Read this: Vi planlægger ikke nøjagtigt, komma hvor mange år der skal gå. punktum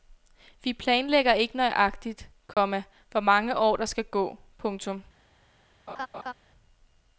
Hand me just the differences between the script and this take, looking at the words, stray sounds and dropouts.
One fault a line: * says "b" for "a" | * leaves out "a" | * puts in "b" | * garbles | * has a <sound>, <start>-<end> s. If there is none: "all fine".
* has a dropout, 2.5-2.6 s
* has a laugh, 5.9-6.3 s